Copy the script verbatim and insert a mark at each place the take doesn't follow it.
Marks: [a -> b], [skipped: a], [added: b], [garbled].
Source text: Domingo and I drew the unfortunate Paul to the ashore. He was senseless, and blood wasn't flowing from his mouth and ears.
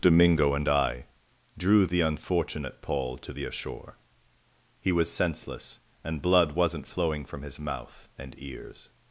Domingo and I drew the unfortunate Paul to the ashore. He was senseless, and blood wasn't flowing from his mouth and ears.